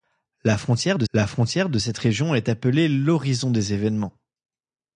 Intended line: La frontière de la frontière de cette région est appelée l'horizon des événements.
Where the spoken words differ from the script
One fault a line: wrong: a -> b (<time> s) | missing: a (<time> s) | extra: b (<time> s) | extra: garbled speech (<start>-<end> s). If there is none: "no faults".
no faults